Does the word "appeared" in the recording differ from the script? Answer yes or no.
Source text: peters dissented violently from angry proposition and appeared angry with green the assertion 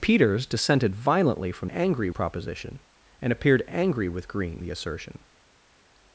no